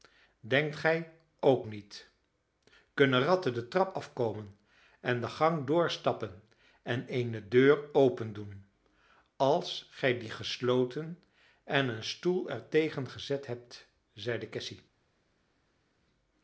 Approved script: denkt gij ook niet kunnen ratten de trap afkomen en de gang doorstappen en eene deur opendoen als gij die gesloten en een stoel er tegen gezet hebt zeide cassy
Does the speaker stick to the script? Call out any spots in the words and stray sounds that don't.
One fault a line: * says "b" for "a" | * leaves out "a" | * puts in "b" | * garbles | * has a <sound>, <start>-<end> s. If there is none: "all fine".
all fine